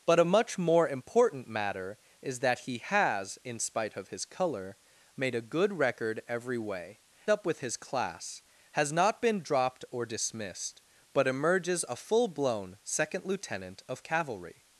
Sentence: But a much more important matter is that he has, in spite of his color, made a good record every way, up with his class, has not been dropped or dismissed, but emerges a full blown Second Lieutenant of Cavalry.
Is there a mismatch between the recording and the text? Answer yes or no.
no